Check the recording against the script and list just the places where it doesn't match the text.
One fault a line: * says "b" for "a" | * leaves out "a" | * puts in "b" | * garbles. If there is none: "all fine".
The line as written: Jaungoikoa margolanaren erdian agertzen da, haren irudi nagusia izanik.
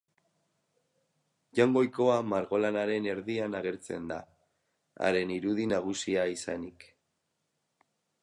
all fine